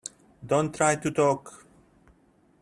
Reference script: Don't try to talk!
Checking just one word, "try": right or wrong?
right